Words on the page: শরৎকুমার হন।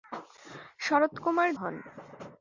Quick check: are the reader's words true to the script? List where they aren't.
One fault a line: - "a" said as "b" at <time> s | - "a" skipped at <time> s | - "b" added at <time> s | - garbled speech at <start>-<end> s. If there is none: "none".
none